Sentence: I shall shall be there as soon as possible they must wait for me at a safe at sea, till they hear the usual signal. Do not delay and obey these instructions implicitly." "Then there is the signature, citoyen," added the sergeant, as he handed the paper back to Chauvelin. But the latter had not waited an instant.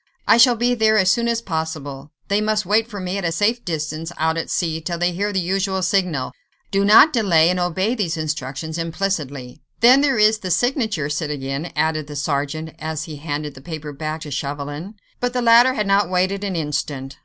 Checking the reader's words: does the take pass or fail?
fail